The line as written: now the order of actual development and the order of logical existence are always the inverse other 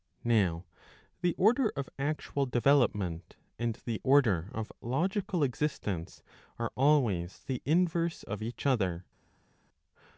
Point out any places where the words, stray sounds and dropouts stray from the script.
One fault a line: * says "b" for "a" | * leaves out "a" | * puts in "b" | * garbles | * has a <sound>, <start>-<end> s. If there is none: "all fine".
* puts in "of each"